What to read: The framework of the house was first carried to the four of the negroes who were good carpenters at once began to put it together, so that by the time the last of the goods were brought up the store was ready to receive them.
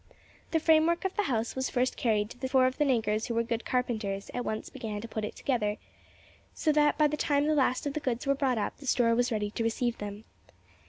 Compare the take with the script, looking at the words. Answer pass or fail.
pass